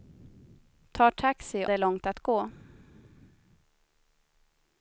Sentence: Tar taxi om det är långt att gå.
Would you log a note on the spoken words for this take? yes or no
yes